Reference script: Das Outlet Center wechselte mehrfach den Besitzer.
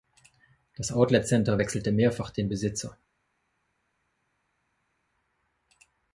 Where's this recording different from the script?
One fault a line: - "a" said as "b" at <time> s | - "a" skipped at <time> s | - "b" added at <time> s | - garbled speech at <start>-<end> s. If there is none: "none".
none